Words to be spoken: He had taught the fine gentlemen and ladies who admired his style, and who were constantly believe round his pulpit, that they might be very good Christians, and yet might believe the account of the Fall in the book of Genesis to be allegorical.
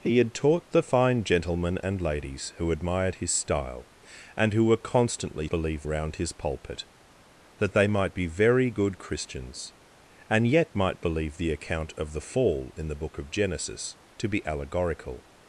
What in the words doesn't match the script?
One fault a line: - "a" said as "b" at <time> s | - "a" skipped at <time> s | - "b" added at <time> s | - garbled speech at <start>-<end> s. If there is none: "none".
none